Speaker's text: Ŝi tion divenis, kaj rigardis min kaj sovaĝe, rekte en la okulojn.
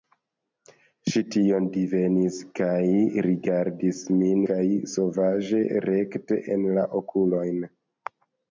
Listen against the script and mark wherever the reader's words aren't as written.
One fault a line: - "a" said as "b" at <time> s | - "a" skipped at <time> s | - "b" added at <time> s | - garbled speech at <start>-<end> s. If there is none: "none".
none